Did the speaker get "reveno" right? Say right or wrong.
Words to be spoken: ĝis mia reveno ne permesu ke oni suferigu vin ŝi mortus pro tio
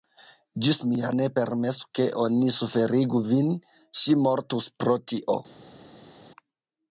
wrong